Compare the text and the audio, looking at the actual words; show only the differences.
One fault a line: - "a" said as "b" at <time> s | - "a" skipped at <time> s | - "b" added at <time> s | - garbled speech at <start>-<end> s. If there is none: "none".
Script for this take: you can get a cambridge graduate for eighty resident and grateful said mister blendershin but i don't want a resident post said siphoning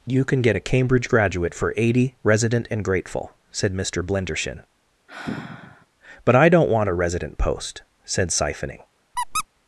none